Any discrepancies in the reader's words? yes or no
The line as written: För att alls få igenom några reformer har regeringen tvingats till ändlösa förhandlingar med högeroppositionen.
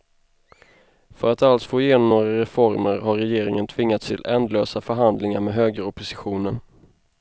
no